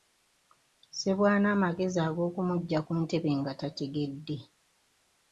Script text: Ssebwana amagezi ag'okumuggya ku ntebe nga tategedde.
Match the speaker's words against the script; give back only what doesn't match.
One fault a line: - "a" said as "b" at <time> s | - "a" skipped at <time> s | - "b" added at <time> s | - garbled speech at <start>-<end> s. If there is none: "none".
none